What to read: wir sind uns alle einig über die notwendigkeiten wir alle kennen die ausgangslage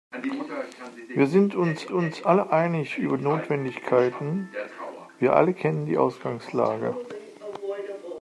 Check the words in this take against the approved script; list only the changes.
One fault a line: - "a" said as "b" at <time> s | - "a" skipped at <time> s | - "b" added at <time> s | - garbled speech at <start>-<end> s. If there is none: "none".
- "uns" added at 1.9 s
- "die" skipped at 3.2 s